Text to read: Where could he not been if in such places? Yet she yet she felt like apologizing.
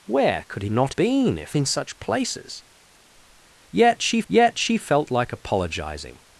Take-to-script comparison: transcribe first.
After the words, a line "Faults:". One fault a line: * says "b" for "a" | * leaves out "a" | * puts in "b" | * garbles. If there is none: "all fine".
Where could he not been if in such places? Yet she yet she felt like apologizing.
Faults:
all fine